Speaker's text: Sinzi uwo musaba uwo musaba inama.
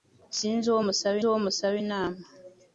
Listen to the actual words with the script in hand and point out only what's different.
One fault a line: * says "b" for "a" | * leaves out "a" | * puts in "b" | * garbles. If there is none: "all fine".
all fine